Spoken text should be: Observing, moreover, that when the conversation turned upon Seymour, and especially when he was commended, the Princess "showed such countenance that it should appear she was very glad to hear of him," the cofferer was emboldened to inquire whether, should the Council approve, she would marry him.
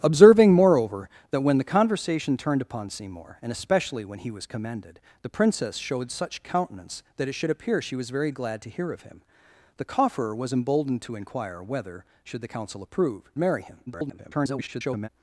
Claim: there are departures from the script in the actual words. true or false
true